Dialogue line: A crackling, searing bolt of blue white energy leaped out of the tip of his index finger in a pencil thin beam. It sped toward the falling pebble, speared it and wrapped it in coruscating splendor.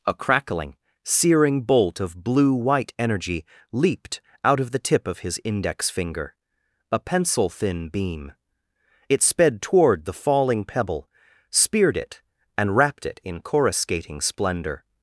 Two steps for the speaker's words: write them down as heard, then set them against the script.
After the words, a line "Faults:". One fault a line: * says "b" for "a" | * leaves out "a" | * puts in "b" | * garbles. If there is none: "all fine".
A crackling, searing bolt of blue white energy leaped out of the tip of his index finger a pencil thin beam. It sped toward the falling pebble, speared it and wrapped it in coruscating splendor.
Faults:
* leaves out "in"